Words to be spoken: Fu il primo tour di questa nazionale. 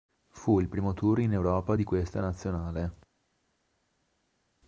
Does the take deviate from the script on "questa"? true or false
false